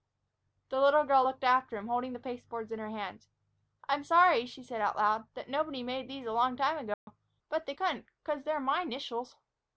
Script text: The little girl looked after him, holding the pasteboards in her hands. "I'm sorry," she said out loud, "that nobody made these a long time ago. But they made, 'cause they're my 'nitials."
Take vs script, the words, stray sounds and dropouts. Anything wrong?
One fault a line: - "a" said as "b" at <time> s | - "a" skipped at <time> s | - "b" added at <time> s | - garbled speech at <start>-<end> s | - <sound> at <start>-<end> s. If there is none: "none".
- dropout at 6.9-7.1 s
- "made" said as "couldn't" at 7.7 s